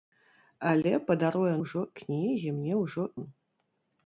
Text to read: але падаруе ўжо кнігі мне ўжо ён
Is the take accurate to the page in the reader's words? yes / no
yes